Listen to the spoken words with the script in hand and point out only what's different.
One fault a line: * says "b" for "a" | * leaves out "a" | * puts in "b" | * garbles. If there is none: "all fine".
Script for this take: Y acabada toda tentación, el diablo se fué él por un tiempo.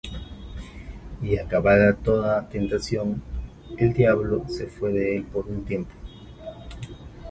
* puts in "de"